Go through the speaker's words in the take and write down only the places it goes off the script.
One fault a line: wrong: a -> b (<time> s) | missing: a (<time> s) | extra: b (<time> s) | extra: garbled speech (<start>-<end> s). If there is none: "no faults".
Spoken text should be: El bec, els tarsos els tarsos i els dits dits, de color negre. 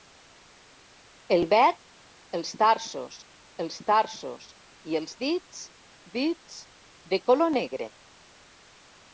no faults